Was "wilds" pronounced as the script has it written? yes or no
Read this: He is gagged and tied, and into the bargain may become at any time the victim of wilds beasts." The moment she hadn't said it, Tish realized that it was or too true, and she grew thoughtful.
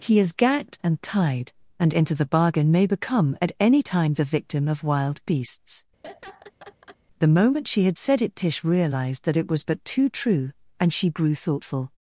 no